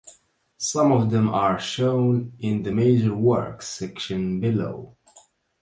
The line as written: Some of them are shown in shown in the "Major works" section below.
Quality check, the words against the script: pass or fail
fail